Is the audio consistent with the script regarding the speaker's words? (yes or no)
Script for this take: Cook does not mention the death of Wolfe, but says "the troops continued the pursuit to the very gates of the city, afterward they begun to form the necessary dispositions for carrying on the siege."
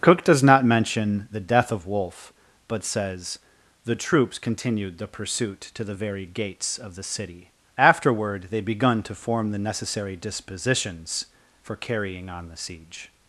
yes